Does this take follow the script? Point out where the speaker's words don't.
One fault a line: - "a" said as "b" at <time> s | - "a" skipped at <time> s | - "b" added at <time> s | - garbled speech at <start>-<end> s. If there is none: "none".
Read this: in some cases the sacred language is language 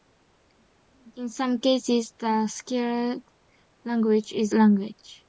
none